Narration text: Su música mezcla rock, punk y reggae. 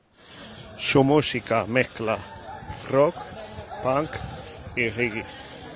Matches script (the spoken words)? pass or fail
pass